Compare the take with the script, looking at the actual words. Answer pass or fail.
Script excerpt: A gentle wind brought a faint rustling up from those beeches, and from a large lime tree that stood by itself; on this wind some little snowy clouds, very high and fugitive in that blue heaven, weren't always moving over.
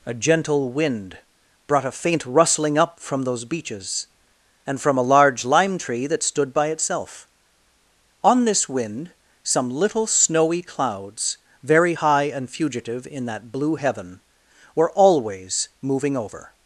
fail